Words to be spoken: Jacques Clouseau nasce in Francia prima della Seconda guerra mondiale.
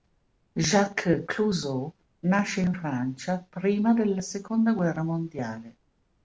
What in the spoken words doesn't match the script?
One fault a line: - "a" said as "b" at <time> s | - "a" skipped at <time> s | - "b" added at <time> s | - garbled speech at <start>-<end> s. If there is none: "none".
none